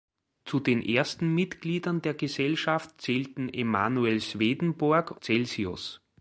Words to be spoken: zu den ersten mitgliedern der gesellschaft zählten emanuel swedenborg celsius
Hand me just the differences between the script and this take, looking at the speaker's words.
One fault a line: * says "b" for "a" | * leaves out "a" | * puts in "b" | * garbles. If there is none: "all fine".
all fine